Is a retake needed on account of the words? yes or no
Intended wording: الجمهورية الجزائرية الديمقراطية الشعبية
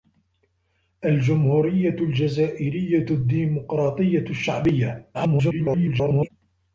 yes